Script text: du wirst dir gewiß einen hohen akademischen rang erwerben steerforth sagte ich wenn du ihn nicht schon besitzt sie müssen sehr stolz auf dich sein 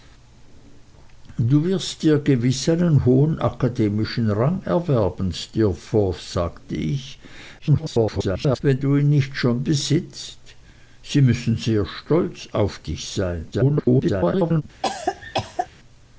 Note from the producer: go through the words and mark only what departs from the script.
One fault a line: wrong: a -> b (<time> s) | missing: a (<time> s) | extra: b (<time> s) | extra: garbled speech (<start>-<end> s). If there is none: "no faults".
extra: garbled speech (7.6-8.6 s)
extra: garbled speech (13.5-14.6 s)